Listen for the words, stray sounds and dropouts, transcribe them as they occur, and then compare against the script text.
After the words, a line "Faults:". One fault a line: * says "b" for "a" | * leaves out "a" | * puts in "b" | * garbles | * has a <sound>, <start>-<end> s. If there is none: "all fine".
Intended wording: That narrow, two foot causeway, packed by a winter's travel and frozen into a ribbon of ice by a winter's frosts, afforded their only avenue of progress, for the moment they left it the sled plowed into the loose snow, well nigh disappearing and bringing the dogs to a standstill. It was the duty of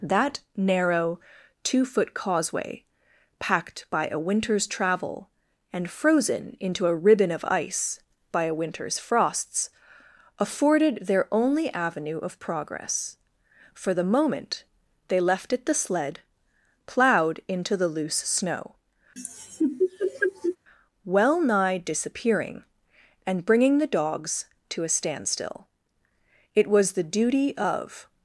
That narrow, two foot causeway, packed by a winter's travel and frozen into a ribbon of ice by a winter's frosts, afforded their only avenue of progress, for the moment they left it the sled plowed into the loose snow, well nigh disappearing and bringing the dogs to a standstill. It was the duty of
Faults:
* has a laugh, 19.2-20.6 s